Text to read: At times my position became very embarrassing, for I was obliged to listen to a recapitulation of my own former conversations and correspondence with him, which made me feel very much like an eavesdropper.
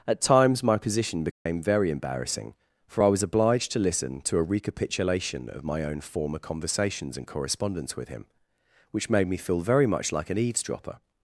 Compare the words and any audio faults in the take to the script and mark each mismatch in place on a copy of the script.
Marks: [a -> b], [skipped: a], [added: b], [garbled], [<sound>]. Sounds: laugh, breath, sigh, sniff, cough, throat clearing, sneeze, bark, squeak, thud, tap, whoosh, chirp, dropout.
At times my position became [dropout] very embarrassing, for I was obliged to listen to a recapitulation of my own former conversations and correspondence with him, which made me feel very much like an eavesdropper.